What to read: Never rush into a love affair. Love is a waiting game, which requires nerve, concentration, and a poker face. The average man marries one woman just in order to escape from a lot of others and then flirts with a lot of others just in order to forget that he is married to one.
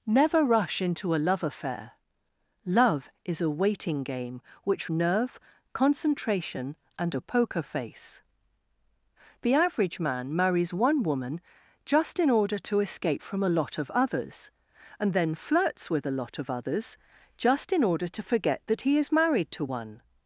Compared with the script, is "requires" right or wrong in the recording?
wrong